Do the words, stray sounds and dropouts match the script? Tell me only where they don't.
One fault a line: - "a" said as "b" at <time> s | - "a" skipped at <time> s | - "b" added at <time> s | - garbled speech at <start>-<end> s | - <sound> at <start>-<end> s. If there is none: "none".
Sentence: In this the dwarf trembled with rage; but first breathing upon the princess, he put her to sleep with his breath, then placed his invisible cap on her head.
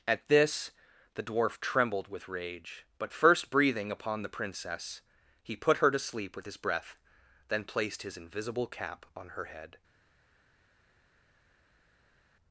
- "In" said as "At" at 0.1 s